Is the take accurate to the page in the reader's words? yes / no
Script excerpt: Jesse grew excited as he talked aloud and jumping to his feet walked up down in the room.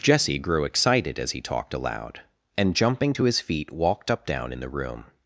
yes